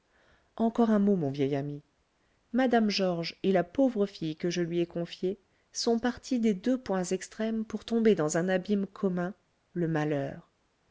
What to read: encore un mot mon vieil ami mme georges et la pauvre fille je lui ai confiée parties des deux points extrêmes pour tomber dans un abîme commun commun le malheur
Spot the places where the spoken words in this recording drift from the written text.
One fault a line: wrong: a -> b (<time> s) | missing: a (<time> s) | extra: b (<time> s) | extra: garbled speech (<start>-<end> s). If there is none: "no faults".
extra: que (4.4 s)
extra: sont (5.7 s)
missing: commun (9.3 s)